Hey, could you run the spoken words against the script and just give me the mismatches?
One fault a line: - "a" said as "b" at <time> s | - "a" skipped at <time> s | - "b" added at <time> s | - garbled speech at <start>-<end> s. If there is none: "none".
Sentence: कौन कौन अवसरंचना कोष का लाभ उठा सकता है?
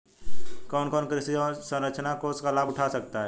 - "कृषि" added at 1.1 s